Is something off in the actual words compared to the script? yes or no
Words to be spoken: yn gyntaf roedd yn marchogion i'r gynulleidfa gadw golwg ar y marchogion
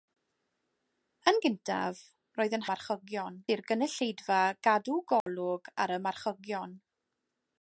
no